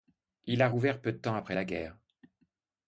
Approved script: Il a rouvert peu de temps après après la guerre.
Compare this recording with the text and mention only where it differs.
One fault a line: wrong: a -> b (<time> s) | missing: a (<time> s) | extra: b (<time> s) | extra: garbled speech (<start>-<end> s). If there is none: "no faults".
missing: après (1.6 s)